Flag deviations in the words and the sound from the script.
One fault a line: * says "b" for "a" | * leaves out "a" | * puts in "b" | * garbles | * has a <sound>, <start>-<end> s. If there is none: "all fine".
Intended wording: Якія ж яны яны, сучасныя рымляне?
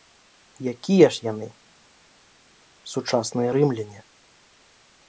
* leaves out "яны"